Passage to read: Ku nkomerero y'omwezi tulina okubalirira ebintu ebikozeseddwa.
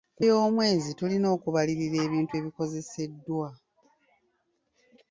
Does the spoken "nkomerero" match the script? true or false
false